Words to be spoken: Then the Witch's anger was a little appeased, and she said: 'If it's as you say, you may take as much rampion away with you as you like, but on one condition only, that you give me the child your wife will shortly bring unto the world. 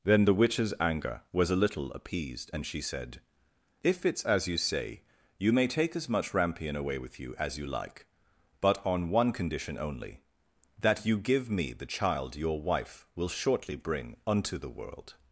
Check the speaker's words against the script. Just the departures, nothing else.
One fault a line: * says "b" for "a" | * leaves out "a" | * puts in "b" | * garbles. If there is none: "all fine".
all fine